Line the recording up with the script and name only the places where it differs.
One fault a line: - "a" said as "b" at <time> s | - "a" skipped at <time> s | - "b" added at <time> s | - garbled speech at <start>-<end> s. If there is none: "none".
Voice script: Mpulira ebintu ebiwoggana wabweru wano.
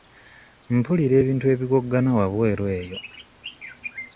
- "wano" said as "eyo" at 2.8 s